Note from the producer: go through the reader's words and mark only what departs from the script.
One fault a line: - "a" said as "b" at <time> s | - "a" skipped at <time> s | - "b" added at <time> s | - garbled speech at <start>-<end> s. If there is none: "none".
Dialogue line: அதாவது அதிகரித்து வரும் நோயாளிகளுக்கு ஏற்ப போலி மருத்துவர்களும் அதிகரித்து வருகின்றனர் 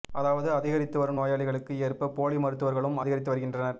none